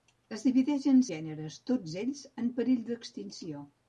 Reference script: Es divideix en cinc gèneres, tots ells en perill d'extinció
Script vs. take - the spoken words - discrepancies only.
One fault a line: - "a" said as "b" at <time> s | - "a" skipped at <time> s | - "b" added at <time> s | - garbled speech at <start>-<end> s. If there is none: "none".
- "cinc" skipped at 1.0 s